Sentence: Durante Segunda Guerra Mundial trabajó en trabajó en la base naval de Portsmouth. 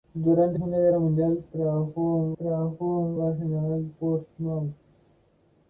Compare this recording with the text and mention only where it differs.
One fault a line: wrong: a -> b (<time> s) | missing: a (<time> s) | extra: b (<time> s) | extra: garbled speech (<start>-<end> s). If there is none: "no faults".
no faults